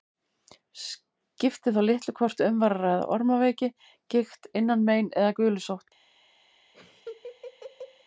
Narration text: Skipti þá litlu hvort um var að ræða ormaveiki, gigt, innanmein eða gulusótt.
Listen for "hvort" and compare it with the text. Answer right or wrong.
right